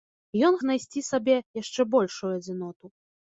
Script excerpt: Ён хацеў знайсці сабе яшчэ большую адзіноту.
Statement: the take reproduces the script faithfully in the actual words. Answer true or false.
false